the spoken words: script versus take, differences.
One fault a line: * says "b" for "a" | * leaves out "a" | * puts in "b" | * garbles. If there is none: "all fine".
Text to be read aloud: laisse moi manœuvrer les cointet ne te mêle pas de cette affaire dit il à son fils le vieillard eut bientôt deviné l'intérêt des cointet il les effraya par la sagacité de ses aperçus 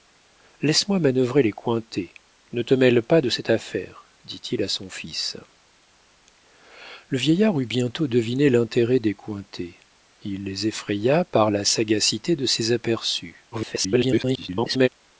* garbles